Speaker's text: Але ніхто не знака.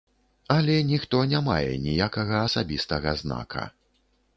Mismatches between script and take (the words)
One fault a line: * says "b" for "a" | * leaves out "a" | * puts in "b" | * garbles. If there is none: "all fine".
* puts in "мае ніякага асабістага"